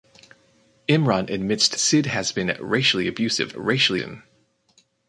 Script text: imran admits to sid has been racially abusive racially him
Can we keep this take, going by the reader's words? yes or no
yes